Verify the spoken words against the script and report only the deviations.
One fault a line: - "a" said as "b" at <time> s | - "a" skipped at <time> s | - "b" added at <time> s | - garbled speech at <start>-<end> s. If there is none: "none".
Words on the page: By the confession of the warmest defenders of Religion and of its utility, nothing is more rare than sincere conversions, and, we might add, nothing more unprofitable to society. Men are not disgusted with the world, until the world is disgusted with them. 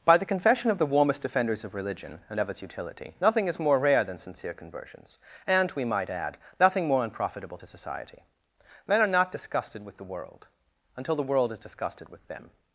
none